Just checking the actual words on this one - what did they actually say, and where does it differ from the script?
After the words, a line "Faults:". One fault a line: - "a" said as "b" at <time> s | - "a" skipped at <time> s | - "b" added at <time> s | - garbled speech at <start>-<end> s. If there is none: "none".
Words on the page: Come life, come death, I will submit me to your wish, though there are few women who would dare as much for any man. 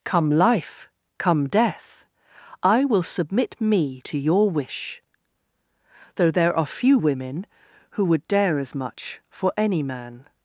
Come life, come death, I will submit me to your wish, though there are few women who would dare as much for any man.
Faults:
none